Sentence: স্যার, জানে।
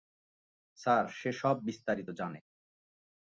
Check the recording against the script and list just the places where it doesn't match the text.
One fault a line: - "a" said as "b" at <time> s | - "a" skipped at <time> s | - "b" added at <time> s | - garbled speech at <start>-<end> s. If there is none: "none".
- "সে সব বিস্তারিত" added at 1.1 s